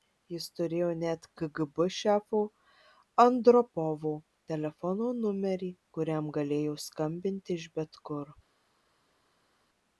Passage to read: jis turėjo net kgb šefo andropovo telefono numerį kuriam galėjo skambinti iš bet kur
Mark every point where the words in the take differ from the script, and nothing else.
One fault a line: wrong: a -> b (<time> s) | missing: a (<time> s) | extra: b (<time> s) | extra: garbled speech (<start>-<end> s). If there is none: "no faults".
no faults